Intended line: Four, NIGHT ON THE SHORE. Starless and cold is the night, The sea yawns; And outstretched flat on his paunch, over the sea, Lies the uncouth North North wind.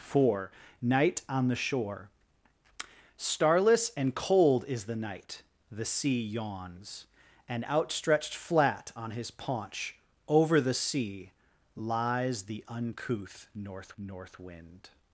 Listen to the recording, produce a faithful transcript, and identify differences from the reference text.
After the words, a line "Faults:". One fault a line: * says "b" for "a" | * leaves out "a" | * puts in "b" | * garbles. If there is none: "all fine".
Four, NIGHT ON THE SHORE. Starless and cold is the night, The sea yawns; And outstretched flat on his paunch, over the sea, Lies the uncouth North North wind.
Faults:
all fine